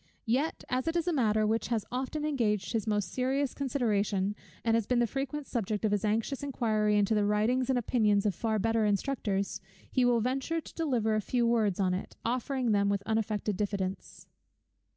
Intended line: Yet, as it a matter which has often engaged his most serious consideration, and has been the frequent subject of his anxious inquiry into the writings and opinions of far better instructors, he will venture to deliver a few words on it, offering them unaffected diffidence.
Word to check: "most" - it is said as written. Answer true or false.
true